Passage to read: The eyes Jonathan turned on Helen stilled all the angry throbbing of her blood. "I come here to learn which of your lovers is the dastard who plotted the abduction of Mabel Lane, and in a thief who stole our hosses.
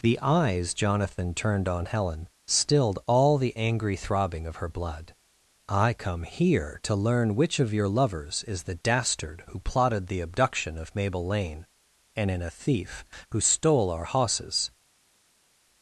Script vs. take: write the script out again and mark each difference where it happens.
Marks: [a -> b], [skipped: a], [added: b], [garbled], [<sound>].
The eyes Jonathan turned on Helen stilled all the angry throbbing of her blood. "I come here to learn which of your lovers is the dastard who plotted the abduction of Mabel Lane, and in a thief who stole our hosses.